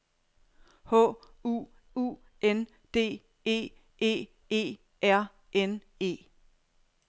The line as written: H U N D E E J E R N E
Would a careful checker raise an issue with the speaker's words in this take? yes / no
yes